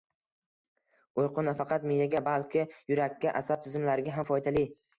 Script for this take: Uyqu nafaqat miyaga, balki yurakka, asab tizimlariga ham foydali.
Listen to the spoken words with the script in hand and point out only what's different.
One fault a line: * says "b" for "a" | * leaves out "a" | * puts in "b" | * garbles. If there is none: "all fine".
all fine